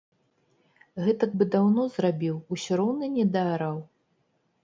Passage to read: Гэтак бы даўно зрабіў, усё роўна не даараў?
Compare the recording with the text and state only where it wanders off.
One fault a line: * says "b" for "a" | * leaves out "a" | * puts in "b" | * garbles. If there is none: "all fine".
all fine